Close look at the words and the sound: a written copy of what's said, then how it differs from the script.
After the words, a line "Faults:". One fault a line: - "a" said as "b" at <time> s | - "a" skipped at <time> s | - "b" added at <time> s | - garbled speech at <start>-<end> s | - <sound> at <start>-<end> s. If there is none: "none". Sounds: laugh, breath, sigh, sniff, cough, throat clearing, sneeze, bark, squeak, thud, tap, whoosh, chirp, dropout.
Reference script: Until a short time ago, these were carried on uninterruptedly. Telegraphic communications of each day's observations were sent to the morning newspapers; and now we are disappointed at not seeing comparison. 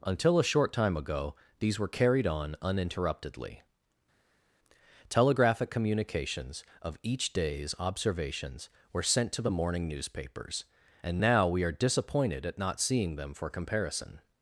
Until a short time ago, these were carried on uninterruptedly. Telegraphic communications of each day's observations were sent to the morning newspapers; and now we are disappointed at not seeing them for comparison.
Faults:
- "them for" added at 13.2 s